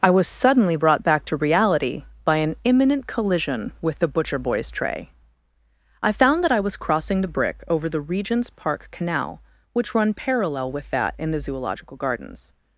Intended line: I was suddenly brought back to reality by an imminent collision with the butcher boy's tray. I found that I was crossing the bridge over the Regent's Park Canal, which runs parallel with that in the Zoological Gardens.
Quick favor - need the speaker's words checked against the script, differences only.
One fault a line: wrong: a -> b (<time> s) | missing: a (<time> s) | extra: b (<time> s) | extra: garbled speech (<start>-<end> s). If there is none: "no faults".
wrong: bridge -> brick (7.3 s)
wrong: runs -> run (9.9 s)